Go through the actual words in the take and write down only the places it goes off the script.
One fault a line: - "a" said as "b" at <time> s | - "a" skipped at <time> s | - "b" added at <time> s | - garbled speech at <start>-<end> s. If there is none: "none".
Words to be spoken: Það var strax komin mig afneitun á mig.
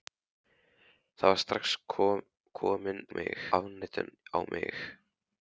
none